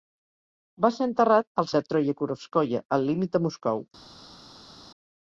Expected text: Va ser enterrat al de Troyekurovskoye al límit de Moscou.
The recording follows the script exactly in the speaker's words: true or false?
true